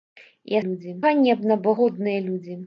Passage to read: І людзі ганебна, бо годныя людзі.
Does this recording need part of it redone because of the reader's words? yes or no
no